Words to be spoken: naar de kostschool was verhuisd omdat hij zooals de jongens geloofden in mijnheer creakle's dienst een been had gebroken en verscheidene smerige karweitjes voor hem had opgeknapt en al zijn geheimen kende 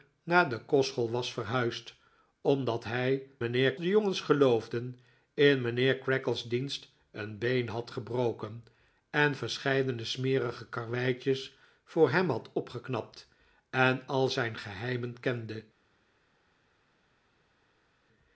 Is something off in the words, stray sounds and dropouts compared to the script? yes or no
yes